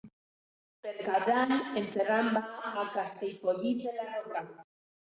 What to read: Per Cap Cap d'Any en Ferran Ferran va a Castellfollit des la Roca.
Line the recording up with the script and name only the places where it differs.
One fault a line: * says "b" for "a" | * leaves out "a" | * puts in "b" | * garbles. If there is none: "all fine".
* leaves out "Cap"
* leaves out "Ferran"
* says "de" for "des"